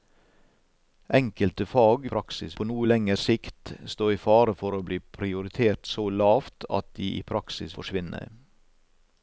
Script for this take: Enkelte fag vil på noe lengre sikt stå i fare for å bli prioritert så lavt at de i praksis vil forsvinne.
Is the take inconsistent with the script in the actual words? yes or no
yes